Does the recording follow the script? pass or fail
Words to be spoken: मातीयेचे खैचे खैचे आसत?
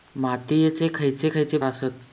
pass